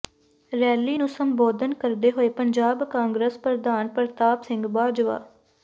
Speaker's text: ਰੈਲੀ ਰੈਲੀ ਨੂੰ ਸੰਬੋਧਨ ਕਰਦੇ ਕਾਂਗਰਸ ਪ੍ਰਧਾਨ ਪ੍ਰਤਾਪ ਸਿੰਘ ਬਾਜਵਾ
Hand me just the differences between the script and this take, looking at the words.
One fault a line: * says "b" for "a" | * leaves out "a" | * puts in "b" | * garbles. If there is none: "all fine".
* leaves out "ਰੈਲੀ"
* puts in "ਹੋਏ ਪੰਜਾਬ"